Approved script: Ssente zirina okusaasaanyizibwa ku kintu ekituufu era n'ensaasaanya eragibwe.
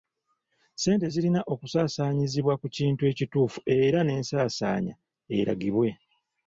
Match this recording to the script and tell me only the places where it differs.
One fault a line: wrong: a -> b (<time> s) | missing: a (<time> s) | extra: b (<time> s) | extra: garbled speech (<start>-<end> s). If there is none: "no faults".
no faults